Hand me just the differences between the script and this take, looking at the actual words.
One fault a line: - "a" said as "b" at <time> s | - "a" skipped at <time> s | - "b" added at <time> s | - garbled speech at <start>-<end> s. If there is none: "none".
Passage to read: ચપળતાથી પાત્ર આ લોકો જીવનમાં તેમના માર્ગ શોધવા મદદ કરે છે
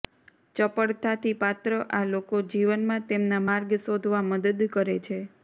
none